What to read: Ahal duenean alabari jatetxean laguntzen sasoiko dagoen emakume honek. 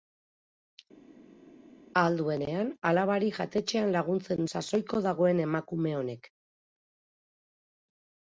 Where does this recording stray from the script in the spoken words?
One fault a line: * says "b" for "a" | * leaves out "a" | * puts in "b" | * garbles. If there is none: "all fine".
all fine